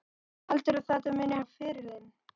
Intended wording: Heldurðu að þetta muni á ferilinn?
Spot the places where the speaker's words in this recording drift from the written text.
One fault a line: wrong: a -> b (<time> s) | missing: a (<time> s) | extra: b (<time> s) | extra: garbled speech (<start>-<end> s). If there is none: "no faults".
no faults